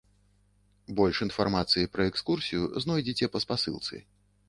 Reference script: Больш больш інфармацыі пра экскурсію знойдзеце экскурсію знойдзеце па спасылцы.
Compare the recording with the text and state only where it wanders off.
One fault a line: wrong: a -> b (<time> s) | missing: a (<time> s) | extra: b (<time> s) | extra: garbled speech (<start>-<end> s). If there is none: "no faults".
missing: больш (1.2 s)
missing: экскурсію знойдзеце (3.2 s)